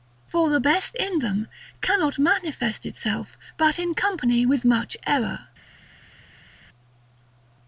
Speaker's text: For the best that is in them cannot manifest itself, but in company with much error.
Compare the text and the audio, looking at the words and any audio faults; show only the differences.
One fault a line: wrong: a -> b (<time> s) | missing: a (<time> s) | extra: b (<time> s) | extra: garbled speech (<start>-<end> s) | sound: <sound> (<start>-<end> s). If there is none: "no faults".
missing: that is (1.0 s)